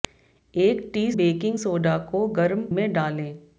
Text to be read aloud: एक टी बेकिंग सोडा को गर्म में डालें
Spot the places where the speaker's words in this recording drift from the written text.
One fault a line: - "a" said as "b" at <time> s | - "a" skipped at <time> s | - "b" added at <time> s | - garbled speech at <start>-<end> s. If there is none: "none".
none